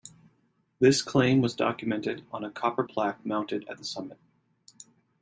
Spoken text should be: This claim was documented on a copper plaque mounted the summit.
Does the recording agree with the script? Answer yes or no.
no